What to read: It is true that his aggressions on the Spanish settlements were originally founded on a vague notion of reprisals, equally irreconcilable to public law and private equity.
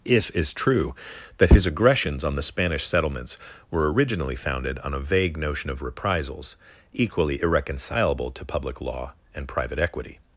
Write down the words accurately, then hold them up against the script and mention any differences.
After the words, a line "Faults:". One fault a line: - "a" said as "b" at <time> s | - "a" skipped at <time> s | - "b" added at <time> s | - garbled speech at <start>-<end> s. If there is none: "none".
If is true that his aggressions on the Spanish settlements were originally founded on a vague notion of reprisals, equally irreconcilable to public law and private equity.
Faults:
- "It" said as "If" at 0.1 s